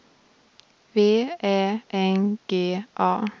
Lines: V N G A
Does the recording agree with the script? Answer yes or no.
no